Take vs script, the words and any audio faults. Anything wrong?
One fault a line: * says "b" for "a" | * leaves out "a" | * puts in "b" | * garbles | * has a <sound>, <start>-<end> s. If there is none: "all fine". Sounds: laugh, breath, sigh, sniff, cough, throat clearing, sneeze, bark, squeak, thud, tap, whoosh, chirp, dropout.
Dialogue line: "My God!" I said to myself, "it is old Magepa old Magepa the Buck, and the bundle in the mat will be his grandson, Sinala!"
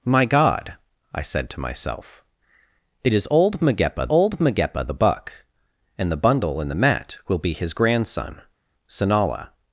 all fine